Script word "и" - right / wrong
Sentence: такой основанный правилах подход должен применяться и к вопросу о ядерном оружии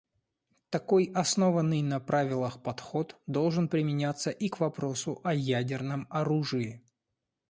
right